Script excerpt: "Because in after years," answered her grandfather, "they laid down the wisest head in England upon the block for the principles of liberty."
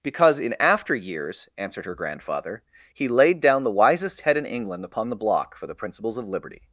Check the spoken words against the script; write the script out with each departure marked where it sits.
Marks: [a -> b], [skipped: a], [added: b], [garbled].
"Because in after years," answered her grandfather, ["they -> he] laid down the wisest head in England upon the block for the principles of liberty."